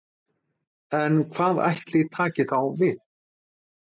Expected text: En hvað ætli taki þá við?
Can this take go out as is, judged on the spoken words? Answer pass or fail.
pass